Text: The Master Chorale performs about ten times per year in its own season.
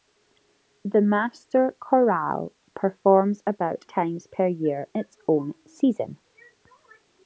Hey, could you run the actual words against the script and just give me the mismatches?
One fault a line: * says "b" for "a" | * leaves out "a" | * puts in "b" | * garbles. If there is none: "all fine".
* leaves out "ten"
* leaves out "in"